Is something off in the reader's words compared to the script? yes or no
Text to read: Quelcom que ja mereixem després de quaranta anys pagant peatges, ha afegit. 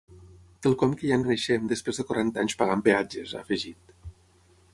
no